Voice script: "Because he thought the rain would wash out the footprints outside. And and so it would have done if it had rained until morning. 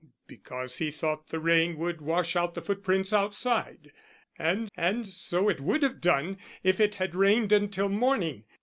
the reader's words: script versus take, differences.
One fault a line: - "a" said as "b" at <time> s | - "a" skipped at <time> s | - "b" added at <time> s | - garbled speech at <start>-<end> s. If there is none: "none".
none